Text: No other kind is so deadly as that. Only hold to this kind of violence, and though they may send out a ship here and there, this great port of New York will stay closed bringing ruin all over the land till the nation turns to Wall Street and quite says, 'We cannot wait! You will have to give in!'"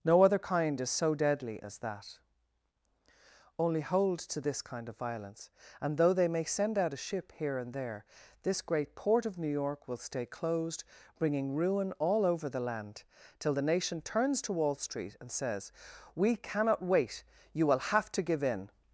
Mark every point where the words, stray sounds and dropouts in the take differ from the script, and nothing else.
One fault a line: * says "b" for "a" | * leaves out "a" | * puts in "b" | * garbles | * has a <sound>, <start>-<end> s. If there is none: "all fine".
* leaves out "quite"